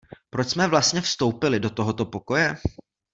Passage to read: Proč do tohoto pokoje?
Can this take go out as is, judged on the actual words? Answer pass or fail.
fail